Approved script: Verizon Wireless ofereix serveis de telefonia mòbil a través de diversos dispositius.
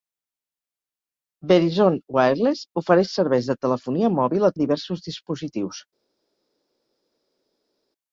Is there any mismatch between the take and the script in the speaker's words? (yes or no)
yes